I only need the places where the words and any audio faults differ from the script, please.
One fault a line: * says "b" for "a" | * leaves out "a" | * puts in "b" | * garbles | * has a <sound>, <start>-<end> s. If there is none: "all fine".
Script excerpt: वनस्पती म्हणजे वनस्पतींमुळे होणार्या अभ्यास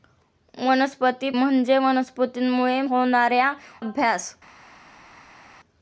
all fine